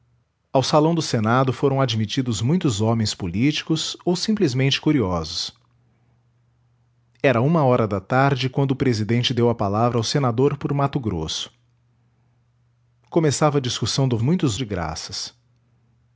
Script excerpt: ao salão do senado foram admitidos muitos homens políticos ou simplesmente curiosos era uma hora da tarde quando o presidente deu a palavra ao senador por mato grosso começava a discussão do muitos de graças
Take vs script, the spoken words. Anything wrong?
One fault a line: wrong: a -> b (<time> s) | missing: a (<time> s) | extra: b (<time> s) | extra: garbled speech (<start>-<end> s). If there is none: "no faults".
no faults